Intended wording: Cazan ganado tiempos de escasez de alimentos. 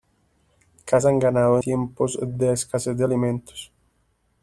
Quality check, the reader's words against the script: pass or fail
pass